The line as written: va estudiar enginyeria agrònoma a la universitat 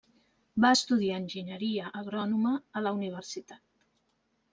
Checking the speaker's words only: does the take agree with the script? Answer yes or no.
yes